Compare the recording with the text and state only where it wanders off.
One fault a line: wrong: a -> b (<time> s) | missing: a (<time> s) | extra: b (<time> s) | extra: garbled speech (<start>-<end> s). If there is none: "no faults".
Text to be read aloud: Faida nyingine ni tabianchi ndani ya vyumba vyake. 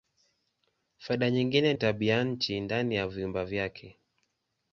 missing: ni (1.7 s)